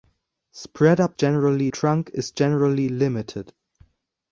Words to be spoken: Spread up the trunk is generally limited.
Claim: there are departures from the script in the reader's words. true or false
true